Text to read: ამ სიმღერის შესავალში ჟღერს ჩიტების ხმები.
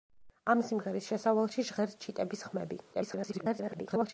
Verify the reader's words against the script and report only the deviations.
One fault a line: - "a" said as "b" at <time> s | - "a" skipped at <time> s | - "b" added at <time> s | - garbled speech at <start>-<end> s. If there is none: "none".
- garbled speech at 2.9-4.1 s